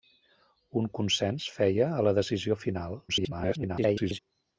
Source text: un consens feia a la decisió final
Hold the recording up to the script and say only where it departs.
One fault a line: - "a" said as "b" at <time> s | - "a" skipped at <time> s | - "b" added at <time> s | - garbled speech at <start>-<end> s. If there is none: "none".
- garbled speech at 3.1-4.2 s